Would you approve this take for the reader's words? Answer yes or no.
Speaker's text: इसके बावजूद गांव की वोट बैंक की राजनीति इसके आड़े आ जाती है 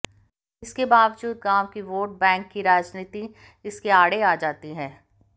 yes